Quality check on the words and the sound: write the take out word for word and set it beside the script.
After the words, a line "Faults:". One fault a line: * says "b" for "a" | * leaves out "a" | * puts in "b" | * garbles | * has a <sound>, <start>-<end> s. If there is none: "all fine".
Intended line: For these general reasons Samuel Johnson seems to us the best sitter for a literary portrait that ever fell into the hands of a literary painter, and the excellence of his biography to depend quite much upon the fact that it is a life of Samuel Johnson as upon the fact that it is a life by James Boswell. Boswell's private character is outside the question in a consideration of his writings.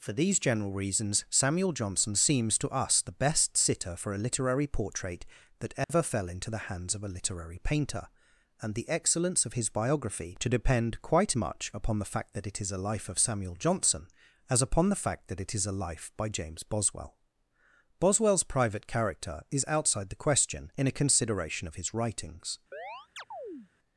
For these general reasons Samuel Johnson seems to us the best sitter for a literary portrait that ever fell into the hands of a literary painter, and the excellence of his biography to depend quite much upon the fact that it is a life of Samuel Johnson as upon the fact that it is a life by James Boswell. Boswell's private character is outside the question in a consideration of his writings.
Faults:
* has a dropout, 5.8-5.9 s
* has a chirp, 22.7-23.7 s